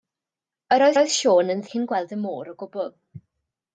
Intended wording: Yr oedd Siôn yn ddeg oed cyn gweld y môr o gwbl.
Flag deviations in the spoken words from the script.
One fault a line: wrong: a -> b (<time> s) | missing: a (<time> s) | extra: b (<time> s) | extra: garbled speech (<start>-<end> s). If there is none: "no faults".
extra: oedd (1.0 s)
missing: ddeg oed (1.6 s)